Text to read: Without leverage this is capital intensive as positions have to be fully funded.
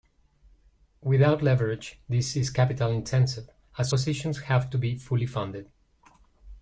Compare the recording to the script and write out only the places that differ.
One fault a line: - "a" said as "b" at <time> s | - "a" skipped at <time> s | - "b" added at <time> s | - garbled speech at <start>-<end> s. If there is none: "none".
none